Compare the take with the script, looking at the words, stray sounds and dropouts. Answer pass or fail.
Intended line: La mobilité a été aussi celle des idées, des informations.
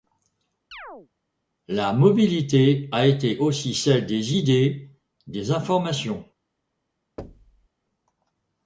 fail